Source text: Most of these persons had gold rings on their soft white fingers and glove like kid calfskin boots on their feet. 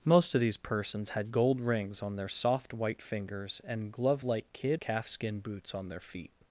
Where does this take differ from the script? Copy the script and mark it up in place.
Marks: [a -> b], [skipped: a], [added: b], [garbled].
Most of these persons had gold rings on their soft white fingers and glove like kid calfskin boots on their feet.